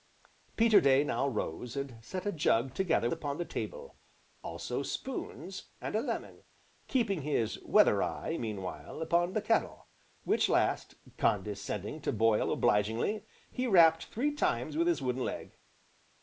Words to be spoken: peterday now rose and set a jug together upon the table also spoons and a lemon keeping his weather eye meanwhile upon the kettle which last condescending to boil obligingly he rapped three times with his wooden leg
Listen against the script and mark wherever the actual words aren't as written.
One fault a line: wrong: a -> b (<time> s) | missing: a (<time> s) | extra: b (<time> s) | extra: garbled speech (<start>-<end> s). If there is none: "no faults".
no faults